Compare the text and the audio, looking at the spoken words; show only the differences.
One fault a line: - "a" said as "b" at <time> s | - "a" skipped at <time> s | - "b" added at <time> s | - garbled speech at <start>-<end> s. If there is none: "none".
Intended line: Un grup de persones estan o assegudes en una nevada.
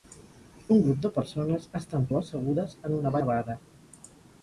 none